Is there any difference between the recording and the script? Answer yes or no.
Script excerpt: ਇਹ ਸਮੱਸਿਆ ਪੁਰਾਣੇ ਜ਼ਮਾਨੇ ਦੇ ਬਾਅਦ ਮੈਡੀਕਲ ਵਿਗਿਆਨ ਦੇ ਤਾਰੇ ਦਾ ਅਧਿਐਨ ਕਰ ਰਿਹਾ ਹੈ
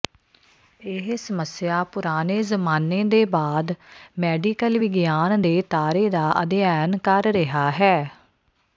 no